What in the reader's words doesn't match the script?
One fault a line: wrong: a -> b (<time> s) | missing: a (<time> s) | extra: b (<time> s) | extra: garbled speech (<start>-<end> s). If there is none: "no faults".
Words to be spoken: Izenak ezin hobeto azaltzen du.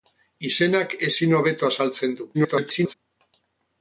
extra: garbled speech (2.3-2.9 s)